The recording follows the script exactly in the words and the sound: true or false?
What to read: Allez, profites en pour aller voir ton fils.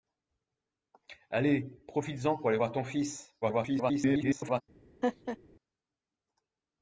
false